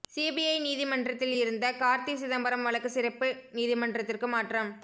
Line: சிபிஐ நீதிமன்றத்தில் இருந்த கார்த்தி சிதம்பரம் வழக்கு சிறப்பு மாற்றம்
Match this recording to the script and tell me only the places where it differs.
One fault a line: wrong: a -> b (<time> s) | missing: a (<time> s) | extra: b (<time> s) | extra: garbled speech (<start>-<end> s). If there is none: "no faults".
extra: நீதிமன்றத்திற்கு (3.5 s)